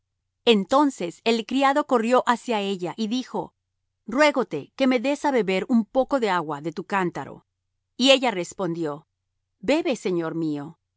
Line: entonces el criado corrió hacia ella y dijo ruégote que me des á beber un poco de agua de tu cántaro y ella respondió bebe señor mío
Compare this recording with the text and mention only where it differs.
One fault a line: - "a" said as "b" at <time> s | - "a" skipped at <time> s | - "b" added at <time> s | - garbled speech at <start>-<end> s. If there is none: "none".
none